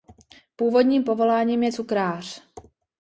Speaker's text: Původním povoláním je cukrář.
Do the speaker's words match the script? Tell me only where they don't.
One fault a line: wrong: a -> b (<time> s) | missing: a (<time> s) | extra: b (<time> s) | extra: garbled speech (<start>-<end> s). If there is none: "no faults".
no faults